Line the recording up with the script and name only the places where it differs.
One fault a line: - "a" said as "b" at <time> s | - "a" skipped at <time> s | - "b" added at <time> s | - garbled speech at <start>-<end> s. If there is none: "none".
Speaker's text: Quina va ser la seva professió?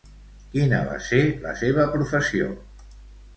none